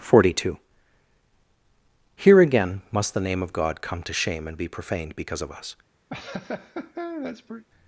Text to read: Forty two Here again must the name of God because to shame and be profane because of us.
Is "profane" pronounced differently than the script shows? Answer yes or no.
yes